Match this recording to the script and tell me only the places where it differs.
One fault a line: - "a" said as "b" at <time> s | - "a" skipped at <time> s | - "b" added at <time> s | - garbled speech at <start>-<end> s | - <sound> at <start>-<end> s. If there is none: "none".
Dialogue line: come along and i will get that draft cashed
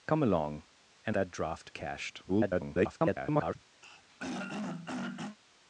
- "i will get" skipped at 1.1 s
- garbled speech at 2.3-3.6 s
- throat clearing at 3.8-5.4 s